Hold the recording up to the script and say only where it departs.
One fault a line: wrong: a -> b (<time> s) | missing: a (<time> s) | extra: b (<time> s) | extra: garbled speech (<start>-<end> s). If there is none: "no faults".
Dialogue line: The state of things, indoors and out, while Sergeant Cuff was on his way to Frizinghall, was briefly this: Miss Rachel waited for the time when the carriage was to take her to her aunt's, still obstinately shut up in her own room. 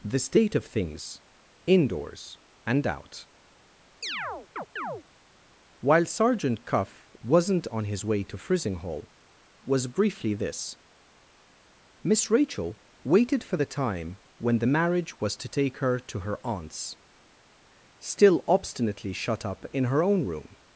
wrong: was -> wasn't (7.2 s)
wrong: carriage -> marriage (14.7 s)